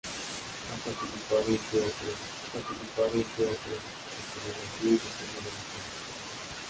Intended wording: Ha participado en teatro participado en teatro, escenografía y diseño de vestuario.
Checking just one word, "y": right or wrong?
right